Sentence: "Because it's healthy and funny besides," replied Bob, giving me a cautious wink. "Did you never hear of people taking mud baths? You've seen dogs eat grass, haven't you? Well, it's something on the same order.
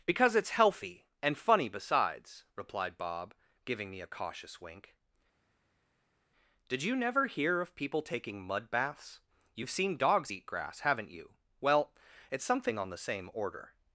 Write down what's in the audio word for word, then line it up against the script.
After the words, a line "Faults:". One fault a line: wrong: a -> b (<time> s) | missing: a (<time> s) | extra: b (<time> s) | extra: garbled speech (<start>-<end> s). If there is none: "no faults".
"Because it's healthy and funny besides," replied Bob, giving me a cautious wink. "Did you never hear of people taking mud baths? You've seen dogs eat grass, haven't you? Well, it's something on the same order.
Faults:
no faults